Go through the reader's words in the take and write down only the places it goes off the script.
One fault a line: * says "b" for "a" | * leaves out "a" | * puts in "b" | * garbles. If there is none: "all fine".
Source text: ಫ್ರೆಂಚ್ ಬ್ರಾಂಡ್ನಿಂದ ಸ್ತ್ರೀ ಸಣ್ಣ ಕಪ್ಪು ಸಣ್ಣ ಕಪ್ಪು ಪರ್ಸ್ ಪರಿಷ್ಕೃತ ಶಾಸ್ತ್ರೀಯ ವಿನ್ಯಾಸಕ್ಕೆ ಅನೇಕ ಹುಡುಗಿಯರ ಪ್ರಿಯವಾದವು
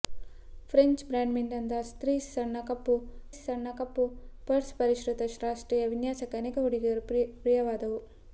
all fine